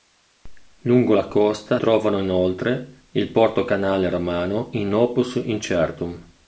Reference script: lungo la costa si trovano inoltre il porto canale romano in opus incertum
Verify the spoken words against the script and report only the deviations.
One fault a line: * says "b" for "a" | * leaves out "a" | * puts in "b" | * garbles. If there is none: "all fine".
* leaves out "si"